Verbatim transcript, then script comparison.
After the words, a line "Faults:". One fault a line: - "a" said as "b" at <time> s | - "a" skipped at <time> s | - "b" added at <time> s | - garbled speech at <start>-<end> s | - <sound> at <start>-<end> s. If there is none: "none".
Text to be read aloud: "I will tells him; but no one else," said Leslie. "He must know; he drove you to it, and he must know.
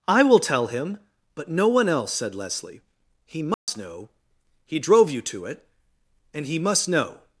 "I will tell him; but no one else," said Leslie. "He must know; he drove you to it, and he must know.
Faults:
- "tells" said as "tell" at 0.4 s
- dropout at 3.5-3.7 s